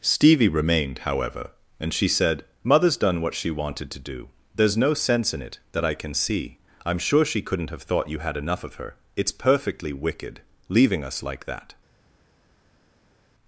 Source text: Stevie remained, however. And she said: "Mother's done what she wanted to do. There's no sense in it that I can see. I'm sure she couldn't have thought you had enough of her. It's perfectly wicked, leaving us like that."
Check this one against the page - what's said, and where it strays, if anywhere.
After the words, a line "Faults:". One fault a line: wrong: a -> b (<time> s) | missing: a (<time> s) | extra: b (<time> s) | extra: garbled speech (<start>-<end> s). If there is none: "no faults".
Stevie remained, however. And she said: "Mother's done what she wanted to do. There's no sense in it that I can see. I'm sure she couldn't have thought you had enough of her. It's perfectly wicked, leaving us like that."
Faults:
no faults